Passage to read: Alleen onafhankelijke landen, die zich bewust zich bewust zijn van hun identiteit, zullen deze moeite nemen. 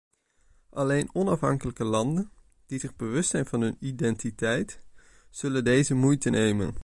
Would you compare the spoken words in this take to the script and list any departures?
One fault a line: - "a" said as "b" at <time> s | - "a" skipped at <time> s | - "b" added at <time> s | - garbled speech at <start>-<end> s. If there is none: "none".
- "zich bewust" skipped at 3.3 s